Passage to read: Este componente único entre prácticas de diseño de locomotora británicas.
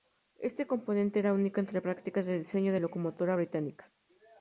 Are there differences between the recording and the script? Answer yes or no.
yes